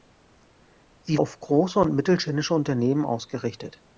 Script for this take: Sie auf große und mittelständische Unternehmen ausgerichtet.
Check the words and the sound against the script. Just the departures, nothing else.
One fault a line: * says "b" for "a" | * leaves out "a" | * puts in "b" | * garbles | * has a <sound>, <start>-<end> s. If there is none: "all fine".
all fine